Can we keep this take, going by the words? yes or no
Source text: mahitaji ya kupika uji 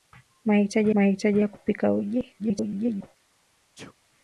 no